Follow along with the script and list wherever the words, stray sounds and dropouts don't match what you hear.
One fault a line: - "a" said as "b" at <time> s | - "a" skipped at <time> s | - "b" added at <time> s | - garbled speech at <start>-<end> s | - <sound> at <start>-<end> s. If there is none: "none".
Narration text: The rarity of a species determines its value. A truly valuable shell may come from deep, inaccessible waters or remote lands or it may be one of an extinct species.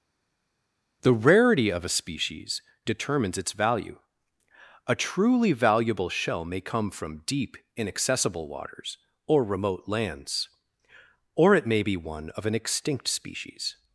none